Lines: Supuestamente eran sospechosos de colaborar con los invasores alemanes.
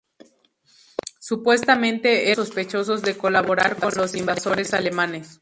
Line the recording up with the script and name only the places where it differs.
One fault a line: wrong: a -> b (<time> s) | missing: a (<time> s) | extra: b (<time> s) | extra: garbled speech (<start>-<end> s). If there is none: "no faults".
missing: eran (2.3 s)